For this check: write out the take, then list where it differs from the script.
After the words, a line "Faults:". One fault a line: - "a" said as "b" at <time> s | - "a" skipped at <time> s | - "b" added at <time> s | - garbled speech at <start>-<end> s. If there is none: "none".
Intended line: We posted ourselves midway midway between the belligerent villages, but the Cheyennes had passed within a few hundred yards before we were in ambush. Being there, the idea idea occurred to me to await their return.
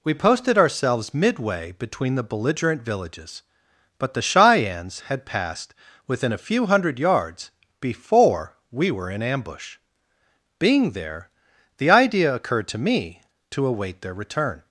We posted ourselves midway between the belligerent villages, but the Cheyennes had passed within a few hundred yards before we were in ambush. Being there, the idea occurred to me to await their return.
Faults:
- "midway" skipped at 1.7 s
- "idea" skipped at 12.3 s